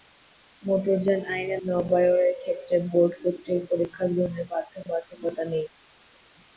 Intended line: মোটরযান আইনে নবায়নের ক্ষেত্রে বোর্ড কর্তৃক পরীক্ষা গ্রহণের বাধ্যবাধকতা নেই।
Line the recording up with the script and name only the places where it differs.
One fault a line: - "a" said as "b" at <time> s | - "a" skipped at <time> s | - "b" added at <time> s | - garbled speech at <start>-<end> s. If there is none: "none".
none